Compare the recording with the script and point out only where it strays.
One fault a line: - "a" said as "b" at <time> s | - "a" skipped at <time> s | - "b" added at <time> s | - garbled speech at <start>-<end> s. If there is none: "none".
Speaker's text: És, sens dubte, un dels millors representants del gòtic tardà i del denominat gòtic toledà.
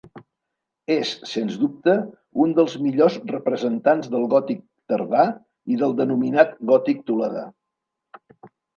none